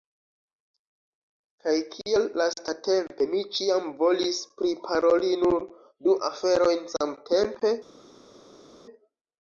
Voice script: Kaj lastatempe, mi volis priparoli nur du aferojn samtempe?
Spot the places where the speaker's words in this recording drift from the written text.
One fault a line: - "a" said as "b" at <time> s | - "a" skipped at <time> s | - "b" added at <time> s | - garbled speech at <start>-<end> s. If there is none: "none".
- "kial" added at 1.9 s
- "ĉiam" added at 3.6 s